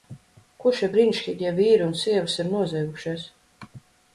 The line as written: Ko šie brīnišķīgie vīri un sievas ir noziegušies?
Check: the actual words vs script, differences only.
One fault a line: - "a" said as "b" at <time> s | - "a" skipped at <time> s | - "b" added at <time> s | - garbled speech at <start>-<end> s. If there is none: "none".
none